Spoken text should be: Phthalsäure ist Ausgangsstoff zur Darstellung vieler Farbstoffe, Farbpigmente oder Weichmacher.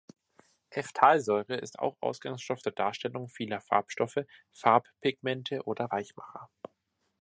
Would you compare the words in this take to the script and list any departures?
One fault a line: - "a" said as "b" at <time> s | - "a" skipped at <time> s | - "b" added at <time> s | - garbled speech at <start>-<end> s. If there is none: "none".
- "auch" added at 1.8 s